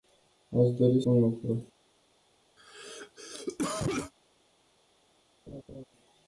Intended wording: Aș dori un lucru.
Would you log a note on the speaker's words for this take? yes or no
no